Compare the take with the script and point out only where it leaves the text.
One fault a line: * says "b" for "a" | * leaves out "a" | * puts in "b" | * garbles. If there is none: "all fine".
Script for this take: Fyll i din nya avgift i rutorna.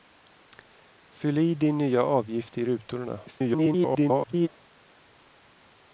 * garbles